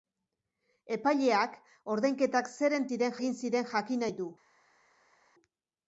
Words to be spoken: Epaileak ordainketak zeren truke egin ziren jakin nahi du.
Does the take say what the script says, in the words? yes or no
no